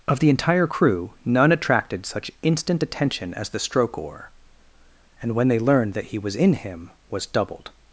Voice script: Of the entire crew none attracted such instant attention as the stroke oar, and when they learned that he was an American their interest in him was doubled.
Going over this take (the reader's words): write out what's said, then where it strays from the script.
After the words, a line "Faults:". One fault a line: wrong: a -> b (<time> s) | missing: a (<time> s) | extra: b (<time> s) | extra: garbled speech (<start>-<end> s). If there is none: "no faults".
Of the entire crew none attracted such instant attention as the stroke oar, and when they learned that he was in him was doubled.
Faults:
missing: an American their interest (6.4 s)